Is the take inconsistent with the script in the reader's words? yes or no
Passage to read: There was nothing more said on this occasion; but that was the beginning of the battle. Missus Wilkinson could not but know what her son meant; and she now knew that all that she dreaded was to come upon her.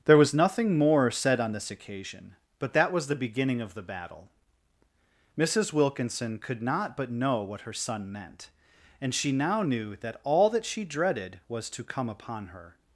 no